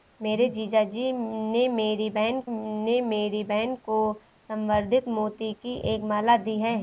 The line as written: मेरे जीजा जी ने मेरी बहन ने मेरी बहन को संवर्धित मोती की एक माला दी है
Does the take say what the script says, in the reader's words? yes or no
yes